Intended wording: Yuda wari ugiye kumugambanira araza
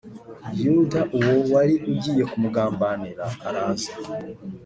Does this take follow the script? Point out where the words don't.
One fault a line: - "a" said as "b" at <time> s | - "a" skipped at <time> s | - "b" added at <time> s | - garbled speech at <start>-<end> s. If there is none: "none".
- "uwo" added at 1.2 s